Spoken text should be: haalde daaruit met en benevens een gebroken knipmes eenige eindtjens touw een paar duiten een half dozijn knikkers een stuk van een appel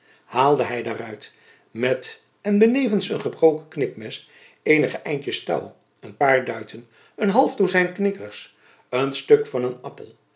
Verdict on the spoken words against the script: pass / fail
fail